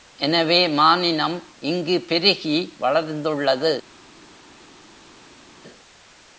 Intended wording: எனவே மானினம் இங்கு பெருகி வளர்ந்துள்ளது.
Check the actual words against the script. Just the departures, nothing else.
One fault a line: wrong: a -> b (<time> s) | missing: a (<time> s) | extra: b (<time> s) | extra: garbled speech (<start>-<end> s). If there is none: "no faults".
no faults